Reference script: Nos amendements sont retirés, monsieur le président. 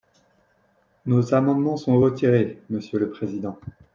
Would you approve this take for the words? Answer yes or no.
yes